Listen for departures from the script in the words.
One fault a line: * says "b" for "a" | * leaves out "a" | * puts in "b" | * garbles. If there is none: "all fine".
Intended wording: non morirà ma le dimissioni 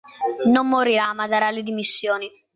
* puts in "darà"